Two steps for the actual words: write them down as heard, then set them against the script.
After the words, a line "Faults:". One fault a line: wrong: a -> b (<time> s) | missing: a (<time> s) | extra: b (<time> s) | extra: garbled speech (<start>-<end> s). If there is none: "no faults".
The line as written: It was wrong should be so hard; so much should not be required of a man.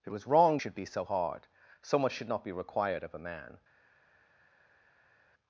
It was wrong should be so hard; so much should not be required of a man.
Faults:
no faults